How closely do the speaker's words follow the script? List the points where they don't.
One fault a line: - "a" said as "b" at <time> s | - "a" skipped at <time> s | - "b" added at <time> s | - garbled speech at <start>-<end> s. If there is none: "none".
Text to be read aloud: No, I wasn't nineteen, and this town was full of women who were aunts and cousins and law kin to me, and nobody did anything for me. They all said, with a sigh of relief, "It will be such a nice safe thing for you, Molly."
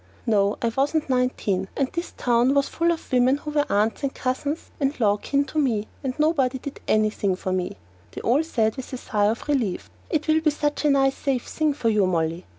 none